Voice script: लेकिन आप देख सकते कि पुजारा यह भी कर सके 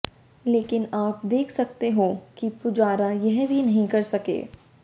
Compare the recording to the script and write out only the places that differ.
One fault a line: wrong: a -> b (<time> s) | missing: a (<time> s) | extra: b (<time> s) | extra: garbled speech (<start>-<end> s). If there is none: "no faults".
extra: हो (1.9 s)
extra: नहीं (3.6 s)